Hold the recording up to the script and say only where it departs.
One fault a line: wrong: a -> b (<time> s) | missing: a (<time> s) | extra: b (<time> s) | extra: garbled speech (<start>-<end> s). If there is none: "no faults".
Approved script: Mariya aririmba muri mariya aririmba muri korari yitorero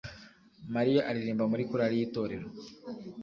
missing: mariya aririmba muri (1.6 s)